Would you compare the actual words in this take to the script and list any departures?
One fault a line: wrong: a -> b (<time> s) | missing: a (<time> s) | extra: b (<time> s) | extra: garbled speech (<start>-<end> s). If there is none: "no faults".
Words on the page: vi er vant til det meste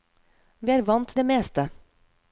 missing: til (1.1 s)